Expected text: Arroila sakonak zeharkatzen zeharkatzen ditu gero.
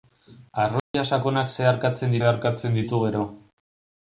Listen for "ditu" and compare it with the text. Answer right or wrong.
right